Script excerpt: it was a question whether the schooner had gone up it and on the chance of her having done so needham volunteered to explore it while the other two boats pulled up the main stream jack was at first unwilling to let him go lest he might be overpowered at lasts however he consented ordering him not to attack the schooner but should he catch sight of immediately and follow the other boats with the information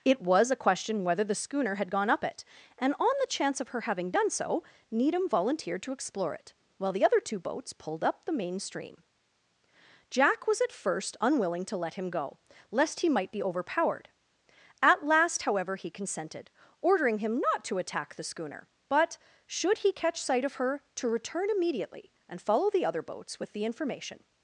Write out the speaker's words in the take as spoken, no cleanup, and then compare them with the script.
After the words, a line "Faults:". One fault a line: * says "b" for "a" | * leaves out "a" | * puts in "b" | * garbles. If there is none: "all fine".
it was a question whether the schooner had gone up it and on the chance of her having done so needham volunteered to explore it while the other two boats pulled up the main stream jack was at first unwilling to let him go lest he might be overpowered at last however he consented ordering him not to attack the schooner but should he catch sight of her to return immediately and follow the other boats with the information
Faults:
* says "last" for "lasts"
* puts in "her to return"